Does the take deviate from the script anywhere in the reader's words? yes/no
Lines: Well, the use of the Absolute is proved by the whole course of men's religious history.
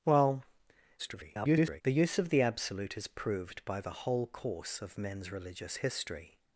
yes